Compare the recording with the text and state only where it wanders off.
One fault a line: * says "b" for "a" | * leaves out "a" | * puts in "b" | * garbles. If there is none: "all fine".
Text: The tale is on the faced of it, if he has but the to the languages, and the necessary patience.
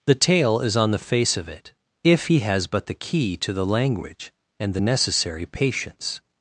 * says "face" for "faced"
* puts in "key"
* says "language" for "languages"